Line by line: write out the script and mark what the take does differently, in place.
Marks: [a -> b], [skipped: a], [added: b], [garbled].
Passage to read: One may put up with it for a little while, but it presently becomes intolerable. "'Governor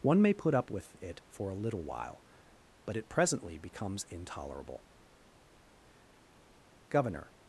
One may put up with it for a little while, but it presently becomes intolerable. "'Governor